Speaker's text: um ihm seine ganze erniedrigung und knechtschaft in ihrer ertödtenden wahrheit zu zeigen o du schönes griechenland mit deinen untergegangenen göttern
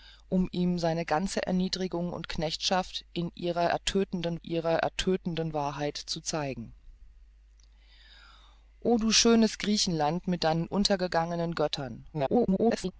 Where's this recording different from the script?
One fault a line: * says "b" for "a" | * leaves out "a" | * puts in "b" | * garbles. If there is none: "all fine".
* puts in "ihrer ertödtenden"
* garbles